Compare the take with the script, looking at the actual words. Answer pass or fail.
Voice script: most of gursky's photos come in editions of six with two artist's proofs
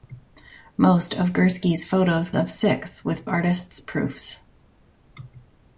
fail